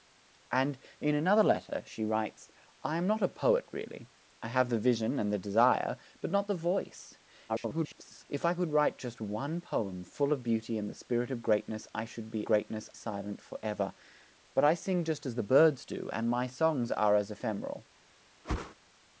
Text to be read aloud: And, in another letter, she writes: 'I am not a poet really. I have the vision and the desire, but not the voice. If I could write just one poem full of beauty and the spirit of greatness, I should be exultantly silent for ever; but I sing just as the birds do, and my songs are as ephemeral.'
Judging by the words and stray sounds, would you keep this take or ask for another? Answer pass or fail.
fail